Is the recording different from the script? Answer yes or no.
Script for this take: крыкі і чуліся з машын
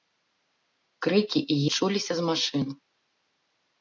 no